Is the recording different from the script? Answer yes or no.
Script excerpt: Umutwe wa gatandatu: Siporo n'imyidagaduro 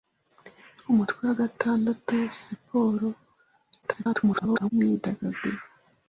yes